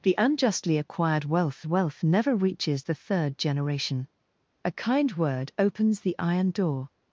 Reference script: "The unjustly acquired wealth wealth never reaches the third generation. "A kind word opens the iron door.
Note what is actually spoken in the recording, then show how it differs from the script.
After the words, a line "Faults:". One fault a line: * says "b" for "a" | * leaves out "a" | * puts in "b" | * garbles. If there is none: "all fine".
"The unjustly acquired wealth wealth never reaches the third generation. "A kind word opens the iron door.
Faults:
all fine